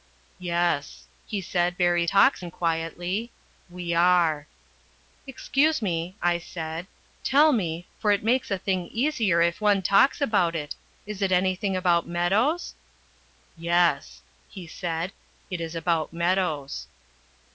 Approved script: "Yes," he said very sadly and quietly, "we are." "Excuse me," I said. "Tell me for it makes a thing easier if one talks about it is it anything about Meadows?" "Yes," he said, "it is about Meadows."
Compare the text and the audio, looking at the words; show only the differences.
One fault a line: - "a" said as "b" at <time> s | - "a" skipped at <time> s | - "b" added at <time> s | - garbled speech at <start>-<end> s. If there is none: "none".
- "sadly" said as "talks" at 2.0 s